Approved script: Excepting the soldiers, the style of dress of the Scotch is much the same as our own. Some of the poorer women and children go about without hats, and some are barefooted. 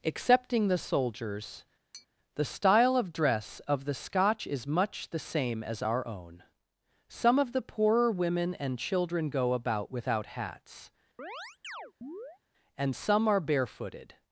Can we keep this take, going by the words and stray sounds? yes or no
no